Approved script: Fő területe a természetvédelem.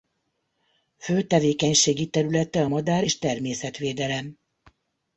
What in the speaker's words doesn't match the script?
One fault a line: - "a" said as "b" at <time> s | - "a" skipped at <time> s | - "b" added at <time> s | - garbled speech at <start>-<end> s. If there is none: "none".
- "tevékenységi" added at 1.2 s
- "madár és" added at 2.7 s